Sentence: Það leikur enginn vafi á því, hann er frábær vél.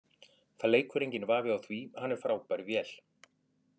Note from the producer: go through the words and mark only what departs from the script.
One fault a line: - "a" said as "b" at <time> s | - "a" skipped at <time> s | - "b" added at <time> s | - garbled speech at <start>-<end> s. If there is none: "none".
none